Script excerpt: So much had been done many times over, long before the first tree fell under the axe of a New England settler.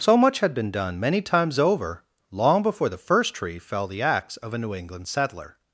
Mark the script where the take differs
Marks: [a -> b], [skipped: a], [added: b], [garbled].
So much had been done many times over, long before the first tree fell [skipped: under] the axe of a New England settler.